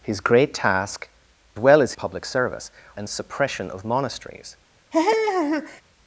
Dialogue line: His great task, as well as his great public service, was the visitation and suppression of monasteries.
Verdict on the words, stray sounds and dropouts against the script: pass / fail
fail